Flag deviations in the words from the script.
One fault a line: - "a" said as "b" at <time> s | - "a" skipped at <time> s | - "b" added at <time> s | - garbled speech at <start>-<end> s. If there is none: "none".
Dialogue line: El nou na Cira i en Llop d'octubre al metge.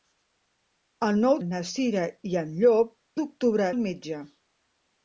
none